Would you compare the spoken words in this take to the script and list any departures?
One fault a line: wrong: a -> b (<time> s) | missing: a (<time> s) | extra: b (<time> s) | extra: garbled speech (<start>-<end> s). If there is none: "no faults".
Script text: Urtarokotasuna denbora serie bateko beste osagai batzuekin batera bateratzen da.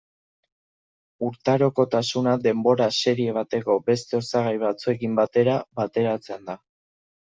no faults